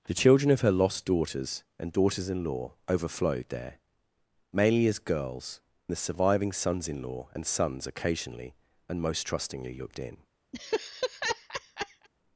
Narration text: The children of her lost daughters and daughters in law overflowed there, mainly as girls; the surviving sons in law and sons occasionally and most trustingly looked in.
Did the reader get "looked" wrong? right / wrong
right